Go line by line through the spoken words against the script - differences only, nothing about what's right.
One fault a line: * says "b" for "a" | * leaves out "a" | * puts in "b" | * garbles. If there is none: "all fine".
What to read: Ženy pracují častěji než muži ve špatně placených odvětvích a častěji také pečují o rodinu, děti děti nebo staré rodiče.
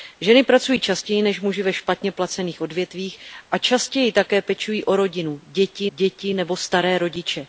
all fine